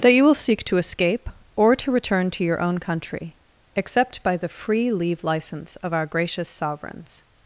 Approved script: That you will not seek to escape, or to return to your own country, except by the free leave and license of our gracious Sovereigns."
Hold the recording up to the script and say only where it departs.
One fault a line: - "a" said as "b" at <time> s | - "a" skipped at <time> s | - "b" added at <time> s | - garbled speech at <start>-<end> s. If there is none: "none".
- "not" skipped at 0.3 s
- "and" skipped at 5.2 s